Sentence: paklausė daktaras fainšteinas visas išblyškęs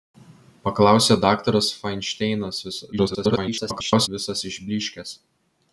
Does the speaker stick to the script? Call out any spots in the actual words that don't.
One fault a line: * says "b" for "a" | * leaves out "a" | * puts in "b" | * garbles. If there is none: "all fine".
* garbles